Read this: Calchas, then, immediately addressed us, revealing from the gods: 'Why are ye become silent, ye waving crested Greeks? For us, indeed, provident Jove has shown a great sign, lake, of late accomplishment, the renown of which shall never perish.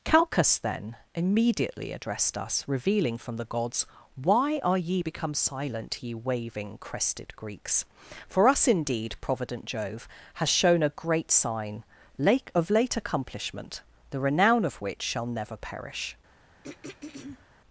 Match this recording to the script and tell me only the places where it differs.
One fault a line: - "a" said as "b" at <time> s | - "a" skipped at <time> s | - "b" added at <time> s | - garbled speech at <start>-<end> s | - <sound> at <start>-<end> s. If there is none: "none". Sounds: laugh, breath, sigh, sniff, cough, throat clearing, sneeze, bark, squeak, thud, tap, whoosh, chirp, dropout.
- throat clearing at 16.6-17.5 s